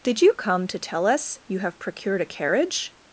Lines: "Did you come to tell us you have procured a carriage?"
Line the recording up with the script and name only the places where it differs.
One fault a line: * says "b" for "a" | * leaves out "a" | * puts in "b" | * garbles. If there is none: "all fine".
all fine